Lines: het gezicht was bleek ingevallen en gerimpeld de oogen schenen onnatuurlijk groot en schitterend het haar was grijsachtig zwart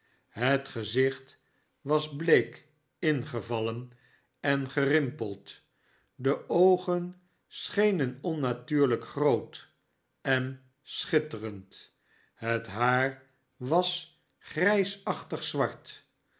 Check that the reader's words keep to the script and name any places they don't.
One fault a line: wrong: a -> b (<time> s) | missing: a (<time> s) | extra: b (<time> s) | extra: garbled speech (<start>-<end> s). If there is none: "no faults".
no faults